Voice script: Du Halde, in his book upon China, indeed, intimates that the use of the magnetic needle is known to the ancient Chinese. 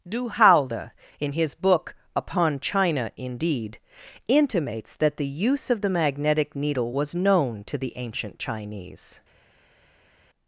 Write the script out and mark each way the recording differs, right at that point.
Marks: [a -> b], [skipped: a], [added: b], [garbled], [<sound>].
Du Halde, in his book upon China, indeed, intimates that the use of the magnetic needle [is -> was] known to the ancient Chinese.